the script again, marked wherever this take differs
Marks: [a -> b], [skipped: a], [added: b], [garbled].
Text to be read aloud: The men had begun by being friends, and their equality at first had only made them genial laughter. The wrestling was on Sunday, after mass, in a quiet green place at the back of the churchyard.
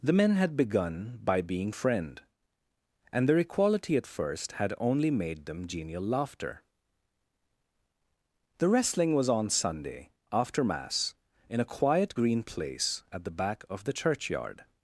The men had begun by being [friends, -> friend] and their equality at first had only made them genial laughter. The wrestling was on Sunday, after mass, in a quiet green place at the back of the churchyard.